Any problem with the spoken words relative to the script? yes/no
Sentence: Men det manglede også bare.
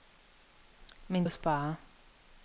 yes